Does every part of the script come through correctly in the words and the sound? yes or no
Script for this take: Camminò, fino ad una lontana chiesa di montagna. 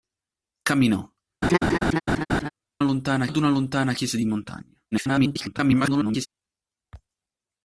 no